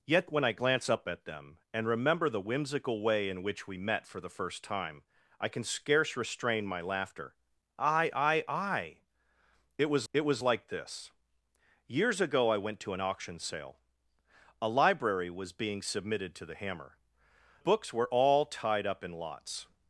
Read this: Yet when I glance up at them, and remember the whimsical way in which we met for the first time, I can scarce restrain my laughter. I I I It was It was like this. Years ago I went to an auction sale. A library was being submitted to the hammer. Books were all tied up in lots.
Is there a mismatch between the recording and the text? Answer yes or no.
no